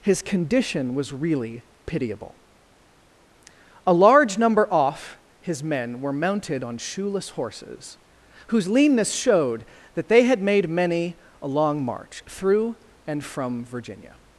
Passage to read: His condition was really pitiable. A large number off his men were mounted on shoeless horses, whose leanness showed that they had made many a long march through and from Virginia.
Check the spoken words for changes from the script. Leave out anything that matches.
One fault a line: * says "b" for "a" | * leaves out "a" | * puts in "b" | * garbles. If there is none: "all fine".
all fine